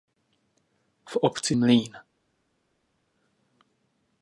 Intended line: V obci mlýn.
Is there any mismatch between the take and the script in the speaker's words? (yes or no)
no